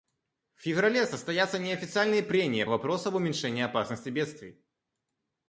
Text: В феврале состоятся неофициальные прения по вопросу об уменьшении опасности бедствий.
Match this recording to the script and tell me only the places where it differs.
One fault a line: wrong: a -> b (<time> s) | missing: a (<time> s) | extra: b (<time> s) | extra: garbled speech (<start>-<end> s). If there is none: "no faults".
missing: по (2.6 s)